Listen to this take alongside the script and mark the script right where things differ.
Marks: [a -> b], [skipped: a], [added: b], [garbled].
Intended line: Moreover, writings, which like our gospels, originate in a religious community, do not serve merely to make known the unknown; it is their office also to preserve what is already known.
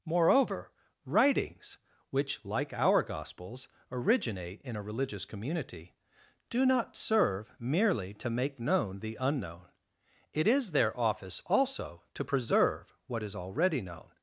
Moreover, writings, which like our gospels, originate in a religious community, do not serve merely to make known the unknown; it is their office also to preserve what is already known.